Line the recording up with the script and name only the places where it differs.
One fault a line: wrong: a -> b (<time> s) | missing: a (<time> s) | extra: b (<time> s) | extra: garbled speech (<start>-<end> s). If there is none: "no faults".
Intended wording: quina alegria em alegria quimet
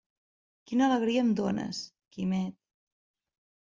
wrong: alegria -> dónes (1.4 s)